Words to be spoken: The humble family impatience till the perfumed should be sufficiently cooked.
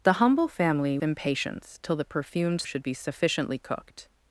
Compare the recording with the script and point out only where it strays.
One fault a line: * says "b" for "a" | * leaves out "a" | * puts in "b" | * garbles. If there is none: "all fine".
all fine